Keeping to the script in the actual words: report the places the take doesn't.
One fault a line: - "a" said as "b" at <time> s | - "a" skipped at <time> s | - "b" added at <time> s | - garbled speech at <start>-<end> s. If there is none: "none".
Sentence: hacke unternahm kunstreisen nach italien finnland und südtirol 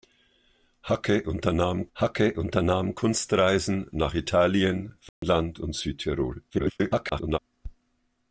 - "hacke unternahm" added at 1.9 s
- garbled speech at 6.5-7.4 s